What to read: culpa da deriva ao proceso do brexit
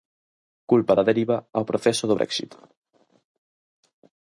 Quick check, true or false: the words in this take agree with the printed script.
true